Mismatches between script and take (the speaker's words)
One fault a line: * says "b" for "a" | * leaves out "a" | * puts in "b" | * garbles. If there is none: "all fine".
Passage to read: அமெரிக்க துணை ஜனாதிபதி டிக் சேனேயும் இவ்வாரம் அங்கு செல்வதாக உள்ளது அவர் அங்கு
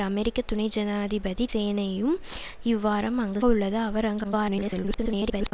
* leaves out "டிக்"
* leaves out "செல்வதாக"
* garbles